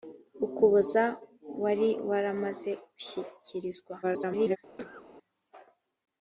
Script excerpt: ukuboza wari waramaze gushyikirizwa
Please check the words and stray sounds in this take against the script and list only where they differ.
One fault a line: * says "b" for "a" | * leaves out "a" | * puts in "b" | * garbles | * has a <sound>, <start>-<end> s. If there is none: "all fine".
* garbles
* has a cough, 4.8-5.1 s